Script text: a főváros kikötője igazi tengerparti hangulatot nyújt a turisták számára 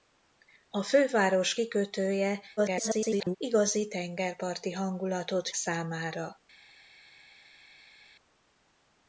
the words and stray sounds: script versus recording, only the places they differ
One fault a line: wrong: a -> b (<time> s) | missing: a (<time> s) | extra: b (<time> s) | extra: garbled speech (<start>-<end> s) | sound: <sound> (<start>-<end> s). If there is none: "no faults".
extra: garbled speech (2.6-3.4 s)
missing: nyújt a turisták (5.5 s)